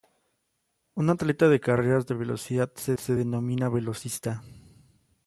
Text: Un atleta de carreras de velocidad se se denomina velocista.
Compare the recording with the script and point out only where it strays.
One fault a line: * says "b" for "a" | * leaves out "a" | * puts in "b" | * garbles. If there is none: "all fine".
all fine